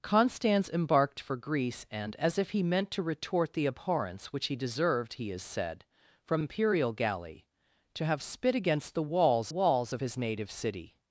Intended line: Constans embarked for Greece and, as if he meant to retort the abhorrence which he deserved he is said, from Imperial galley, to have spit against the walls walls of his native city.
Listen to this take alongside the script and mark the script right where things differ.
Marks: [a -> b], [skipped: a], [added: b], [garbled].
Constans embarked for Greece and, as if he meant to retort the abhorrence which he deserved he is said, from Imperial galley, to have spit against the walls walls of his native city.